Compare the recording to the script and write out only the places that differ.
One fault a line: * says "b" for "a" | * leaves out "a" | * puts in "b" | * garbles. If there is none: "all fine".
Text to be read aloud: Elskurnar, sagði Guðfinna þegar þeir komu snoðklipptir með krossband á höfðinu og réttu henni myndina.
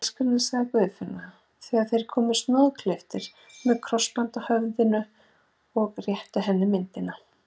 all fine